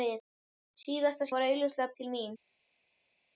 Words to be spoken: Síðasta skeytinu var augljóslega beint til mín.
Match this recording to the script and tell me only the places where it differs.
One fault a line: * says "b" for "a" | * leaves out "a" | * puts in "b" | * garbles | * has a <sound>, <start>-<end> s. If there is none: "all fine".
* leaves out "skeytinu"
* leaves out "beint"